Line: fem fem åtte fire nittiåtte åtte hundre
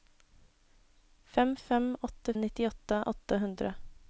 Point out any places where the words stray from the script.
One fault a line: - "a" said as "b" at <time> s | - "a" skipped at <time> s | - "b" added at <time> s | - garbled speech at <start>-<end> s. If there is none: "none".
- "fire" skipped at 2.3 s